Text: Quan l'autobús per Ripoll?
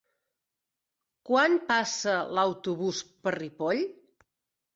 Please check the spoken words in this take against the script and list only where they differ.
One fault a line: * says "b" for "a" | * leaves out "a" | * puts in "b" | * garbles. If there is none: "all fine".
* puts in "passa"